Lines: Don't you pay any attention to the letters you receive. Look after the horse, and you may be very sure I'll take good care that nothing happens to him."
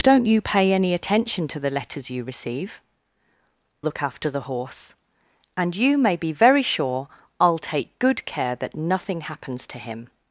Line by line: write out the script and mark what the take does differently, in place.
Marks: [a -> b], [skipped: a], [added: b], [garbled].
Don't you pay any attention to the letters you receive. Look after the horse, and you may be very sure I'll take good care that nothing happens to him."